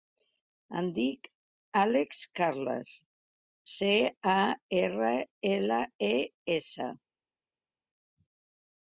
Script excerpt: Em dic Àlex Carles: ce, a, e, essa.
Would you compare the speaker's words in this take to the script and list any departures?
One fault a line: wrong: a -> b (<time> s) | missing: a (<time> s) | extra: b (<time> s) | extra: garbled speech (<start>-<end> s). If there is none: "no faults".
extra: erra ela (4.8 s)